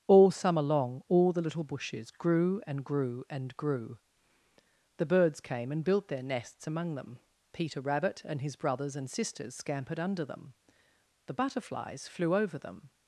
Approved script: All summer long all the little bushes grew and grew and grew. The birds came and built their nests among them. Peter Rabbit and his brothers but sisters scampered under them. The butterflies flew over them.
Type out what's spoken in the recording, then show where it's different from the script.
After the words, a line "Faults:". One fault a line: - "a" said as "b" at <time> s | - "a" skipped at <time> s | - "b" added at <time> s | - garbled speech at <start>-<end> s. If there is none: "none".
All summer long all the little bushes grew and grew and grew. The birds came and built their nests among them. Peter Rabbit and his brothers and sisters scampered under them. The butterflies flew over them.
Faults:
- "but" said as "and" at 9.0 s